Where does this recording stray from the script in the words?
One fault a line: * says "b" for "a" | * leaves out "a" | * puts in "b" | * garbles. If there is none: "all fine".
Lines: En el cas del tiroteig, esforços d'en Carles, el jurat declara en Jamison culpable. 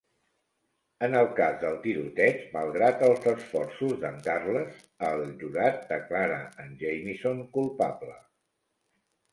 * puts in "malgrat els"